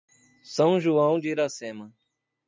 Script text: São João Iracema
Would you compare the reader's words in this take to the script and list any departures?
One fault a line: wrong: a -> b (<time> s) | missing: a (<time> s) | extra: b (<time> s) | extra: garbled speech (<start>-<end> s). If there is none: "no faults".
extra: de (1.2 s)